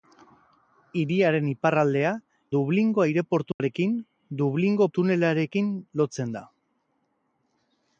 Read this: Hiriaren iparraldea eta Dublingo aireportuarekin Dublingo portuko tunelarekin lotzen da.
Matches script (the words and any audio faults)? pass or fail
fail